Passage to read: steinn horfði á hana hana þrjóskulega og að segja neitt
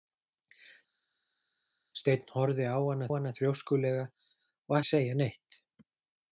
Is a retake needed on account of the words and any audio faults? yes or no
no